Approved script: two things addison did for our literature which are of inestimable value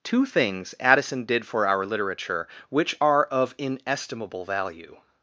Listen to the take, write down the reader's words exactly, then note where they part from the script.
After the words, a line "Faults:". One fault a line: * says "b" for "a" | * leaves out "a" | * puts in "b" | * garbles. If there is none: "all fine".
two things addison did for our literature which are of inestimable value
Faults:
all fine